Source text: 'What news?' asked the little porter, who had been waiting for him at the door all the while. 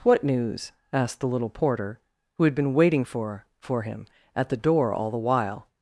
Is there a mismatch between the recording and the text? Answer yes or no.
yes